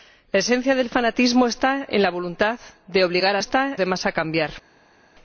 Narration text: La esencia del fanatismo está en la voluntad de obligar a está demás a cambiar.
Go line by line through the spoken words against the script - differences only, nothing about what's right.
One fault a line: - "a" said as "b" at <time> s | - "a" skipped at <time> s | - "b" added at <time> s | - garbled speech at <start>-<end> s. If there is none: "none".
none